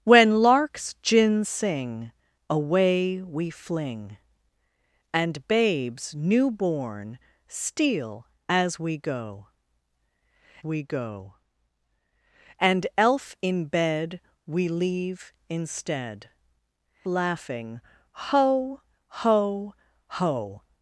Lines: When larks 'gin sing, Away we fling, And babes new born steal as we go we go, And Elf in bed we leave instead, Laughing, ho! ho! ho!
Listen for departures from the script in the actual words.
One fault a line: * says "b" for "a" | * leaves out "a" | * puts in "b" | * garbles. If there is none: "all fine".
all fine